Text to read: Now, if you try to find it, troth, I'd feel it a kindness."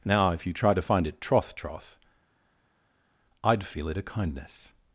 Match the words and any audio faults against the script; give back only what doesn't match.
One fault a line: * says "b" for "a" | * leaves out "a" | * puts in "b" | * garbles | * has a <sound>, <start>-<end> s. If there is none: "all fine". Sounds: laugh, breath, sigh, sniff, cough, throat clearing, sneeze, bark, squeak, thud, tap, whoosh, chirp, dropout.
* puts in "troth"